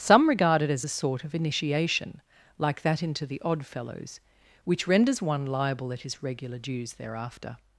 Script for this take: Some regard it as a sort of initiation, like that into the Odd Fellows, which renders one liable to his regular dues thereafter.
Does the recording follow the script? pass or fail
fail